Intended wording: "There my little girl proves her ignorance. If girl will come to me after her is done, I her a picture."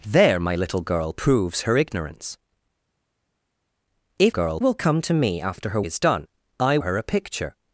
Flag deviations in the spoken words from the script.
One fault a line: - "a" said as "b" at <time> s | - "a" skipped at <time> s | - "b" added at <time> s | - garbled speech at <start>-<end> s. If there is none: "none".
none